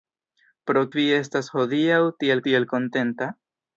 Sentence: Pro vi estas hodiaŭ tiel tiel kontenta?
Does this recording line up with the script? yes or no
yes